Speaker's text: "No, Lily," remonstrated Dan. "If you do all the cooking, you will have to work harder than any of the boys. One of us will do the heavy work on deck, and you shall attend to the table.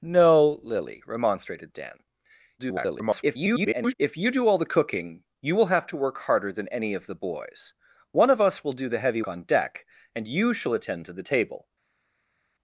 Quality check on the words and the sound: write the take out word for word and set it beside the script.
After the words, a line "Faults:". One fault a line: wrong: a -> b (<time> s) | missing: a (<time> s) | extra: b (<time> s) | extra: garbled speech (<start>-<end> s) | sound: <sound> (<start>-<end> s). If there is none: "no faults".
"No, Lily," remonstrated Dan. [garbled] "If you do all the cooking, you will have to work harder than any of the boys. One of us will do the heavy on deck, and you shall attend to the table.
Faults:
extra: garbled speech (2.6-3.9 s)
missing: work (9.2 s)